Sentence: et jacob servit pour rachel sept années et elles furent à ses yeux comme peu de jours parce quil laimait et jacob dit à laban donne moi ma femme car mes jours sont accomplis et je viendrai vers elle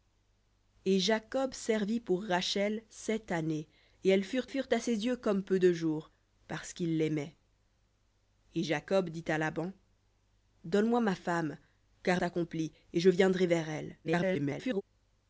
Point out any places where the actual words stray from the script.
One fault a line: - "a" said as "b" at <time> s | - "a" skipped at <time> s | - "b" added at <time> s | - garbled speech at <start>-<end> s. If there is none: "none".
- "furent" added at 4.4 s
- "mes jours sont" skipped at 12.2 s
- garbled speech at 14.0-14.8 s